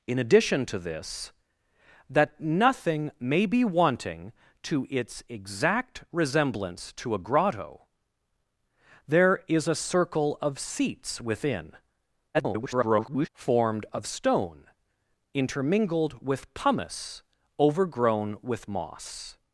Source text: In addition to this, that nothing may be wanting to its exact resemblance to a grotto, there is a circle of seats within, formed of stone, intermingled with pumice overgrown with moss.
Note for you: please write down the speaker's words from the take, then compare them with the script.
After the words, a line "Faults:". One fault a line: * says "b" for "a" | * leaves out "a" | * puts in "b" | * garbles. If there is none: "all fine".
In addition to this, that nothing may be wanting to its exact resemblance to a grotto, there is a circle of seats within, [garbled] formed of stone, intermingled with pumice overgrown with moss.
Faults:
* garbles